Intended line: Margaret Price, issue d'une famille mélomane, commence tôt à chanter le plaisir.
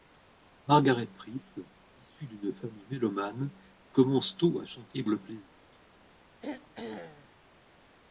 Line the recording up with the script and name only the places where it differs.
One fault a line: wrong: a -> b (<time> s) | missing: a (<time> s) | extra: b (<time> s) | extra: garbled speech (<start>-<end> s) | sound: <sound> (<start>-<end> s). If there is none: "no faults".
sound: throat clearing (6.4-7.3 s)